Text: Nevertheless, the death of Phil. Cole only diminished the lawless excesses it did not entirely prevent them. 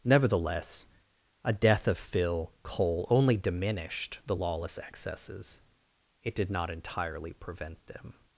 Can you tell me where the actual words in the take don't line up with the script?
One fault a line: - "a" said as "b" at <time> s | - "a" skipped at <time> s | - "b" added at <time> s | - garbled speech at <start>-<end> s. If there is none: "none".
- "the" said as "a" at 1.4 s